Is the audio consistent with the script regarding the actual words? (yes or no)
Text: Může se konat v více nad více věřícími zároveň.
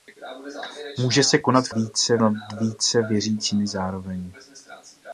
yes